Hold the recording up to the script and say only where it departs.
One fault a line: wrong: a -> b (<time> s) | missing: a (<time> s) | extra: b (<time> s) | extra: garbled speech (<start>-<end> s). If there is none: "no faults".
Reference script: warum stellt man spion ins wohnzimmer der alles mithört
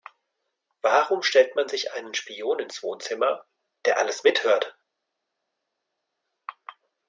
extra: sich einen (1.7 s)